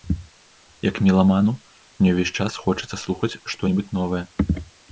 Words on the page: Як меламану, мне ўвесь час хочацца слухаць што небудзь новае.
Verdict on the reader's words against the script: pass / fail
pass